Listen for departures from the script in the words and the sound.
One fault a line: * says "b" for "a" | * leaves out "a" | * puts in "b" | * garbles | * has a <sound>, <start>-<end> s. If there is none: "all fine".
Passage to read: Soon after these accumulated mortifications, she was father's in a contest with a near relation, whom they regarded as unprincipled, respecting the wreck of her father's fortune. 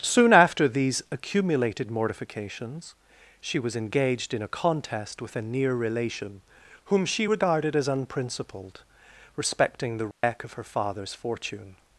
* says "engaged" for "father's"
* says "she" for "they"
* has a dropout, 10.1-10.2 s